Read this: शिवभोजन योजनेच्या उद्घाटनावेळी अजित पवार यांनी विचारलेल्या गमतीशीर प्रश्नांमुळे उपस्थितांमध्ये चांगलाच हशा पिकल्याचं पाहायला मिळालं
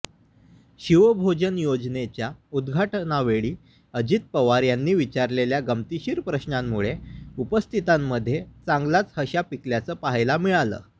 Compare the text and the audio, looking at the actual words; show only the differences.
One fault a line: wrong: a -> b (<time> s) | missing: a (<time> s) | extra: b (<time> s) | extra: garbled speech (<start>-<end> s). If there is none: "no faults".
no faults